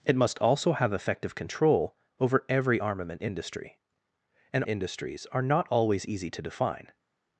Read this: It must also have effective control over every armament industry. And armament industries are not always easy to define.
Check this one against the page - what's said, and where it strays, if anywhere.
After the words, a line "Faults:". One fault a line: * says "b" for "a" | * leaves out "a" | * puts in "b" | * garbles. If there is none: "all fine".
It must also have effective control over every armament industry. And industries are not always easy to define.
Faults:
* leaves out "armament"